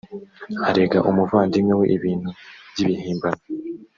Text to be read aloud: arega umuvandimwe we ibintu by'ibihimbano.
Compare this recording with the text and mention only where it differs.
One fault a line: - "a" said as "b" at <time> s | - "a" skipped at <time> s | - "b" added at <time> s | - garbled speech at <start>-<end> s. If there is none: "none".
none